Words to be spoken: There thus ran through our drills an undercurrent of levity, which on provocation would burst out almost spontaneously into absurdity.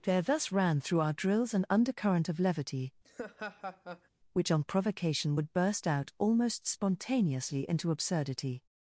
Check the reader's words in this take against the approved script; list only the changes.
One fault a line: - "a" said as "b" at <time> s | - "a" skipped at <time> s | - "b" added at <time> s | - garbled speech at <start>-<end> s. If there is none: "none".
none